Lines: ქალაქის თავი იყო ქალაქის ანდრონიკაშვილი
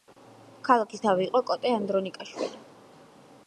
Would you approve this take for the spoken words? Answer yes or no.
no